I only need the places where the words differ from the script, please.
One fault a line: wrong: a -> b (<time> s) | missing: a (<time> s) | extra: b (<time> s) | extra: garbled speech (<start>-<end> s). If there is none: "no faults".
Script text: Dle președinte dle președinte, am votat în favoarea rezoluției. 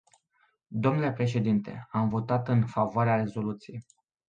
missing: dle președinte (1.9 s)